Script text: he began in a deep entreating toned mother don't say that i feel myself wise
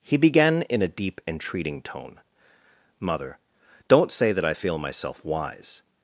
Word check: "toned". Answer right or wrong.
wrong